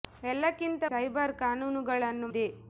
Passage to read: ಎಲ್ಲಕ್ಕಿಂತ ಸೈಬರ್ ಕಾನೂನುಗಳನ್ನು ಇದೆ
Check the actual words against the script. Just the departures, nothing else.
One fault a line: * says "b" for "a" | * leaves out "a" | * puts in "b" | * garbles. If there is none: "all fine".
all fine